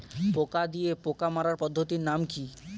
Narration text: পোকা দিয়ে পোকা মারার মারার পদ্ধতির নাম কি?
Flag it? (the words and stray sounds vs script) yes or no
yes